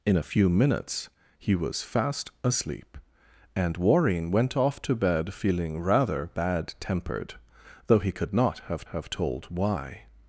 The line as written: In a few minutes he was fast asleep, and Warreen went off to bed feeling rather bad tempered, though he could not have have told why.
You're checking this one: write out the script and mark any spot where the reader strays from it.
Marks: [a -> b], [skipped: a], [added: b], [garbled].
In a few minutes he was fast asleep, and Warreen went off to bed feeling rather bad tempered, though he could not have have told why.